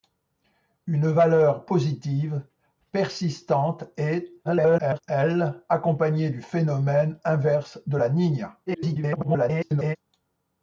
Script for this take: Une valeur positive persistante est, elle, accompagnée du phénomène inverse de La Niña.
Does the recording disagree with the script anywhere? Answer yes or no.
yes